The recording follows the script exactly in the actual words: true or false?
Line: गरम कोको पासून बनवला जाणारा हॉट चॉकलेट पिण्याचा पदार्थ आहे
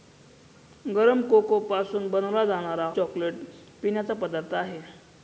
false